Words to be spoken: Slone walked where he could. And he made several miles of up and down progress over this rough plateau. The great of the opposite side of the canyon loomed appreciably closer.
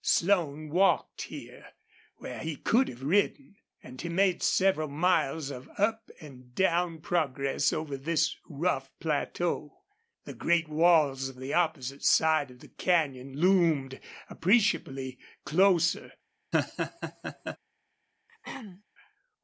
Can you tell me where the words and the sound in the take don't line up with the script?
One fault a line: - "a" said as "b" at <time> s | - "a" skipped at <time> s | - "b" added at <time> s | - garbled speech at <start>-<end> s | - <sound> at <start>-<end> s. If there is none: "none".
- "here" added at 1.2 s
- "have ridden" added at 2.9 s
- "walls" added at 10.7 s
- laugh at 16.5-17.6 s
- throat clearing at 18.3-18.8 s